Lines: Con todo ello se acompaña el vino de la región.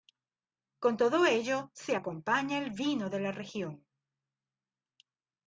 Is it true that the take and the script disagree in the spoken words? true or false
false